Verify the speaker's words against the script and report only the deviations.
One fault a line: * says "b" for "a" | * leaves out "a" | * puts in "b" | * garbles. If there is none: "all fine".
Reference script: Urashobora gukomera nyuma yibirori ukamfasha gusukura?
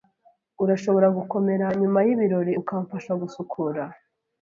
all fine